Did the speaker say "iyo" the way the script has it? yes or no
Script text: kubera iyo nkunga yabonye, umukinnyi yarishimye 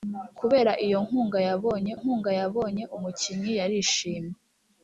yes